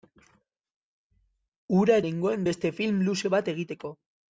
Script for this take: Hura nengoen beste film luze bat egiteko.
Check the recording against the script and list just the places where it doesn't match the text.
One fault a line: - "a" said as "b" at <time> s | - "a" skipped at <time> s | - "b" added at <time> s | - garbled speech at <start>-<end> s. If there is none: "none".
none